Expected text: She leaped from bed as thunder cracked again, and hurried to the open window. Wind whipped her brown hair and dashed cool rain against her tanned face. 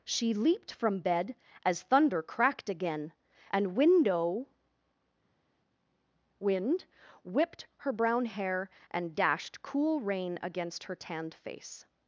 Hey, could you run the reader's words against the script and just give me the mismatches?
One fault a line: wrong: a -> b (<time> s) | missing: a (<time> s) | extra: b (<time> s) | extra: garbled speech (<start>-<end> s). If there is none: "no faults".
missing: hurried to the open (3.7 s)